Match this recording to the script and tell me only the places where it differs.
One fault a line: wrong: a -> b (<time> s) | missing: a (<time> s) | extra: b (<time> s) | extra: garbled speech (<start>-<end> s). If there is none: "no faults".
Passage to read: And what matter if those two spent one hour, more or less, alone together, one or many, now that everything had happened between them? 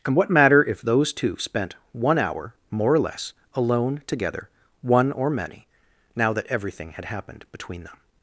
no faults